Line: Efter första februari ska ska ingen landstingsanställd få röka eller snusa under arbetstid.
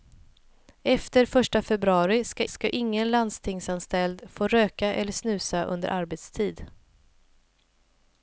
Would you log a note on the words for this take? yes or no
no